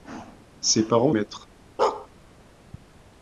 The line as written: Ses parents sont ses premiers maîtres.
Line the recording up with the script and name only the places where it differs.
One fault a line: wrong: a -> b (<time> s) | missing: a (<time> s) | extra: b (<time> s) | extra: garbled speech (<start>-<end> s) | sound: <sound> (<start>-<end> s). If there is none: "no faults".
missing: sont ses premiers (1.1 s)
sound: bark (1.8-2.1 s)